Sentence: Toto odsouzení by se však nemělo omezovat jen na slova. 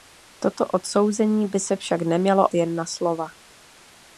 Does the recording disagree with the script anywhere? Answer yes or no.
yes